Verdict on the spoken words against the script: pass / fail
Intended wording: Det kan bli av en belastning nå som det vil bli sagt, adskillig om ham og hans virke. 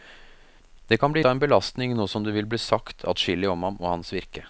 pass